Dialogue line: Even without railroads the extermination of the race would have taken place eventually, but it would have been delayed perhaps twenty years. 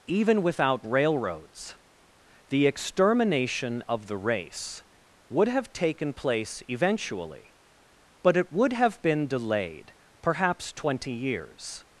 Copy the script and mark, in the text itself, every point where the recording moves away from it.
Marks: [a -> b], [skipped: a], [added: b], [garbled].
Even without railroads the extermination of the race would have taken place eventually, but it would have been delayed perhaps twenty years.